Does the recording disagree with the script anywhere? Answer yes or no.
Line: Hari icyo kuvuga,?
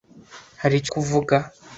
no